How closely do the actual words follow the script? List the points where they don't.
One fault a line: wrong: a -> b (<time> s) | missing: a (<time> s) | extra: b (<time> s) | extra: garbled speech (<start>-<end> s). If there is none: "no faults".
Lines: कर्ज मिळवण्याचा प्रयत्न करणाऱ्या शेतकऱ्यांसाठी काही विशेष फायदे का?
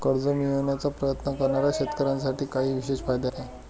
no faults